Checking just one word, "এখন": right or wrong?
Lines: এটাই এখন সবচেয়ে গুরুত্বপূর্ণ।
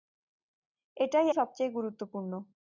wrong